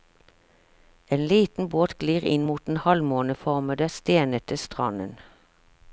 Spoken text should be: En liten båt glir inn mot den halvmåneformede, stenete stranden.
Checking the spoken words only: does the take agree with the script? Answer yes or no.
yes